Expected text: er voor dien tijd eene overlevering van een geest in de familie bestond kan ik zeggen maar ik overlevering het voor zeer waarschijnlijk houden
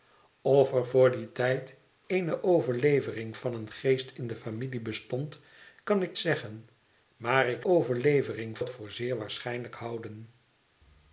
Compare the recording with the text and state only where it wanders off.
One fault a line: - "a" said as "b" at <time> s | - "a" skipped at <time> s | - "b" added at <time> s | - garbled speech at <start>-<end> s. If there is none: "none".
none